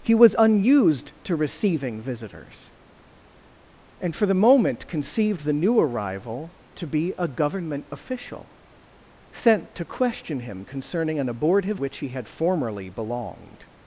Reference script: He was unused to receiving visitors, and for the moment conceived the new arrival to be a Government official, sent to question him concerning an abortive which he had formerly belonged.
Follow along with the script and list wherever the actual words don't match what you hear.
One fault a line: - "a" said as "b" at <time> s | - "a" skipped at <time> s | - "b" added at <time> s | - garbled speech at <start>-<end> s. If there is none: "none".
none